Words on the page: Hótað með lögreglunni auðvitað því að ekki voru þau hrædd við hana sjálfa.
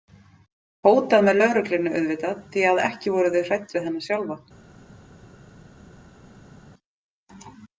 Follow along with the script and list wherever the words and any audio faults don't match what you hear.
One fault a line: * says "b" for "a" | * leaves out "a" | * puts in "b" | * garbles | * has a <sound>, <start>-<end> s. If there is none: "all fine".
all fine